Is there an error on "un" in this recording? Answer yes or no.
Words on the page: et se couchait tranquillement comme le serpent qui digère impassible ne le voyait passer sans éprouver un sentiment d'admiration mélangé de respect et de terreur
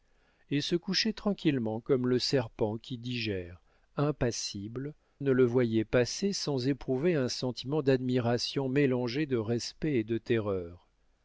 no